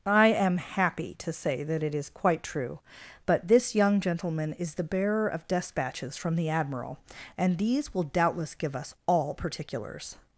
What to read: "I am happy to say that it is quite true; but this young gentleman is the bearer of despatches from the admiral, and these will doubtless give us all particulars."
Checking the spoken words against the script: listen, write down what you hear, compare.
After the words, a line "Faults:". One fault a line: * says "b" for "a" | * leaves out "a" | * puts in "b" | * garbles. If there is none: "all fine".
"I am happy to say that it is quite true; but this young gentleman is the bearer of despatches from the admiral, and these will doubtless give us all particulars."
Faults:
all fine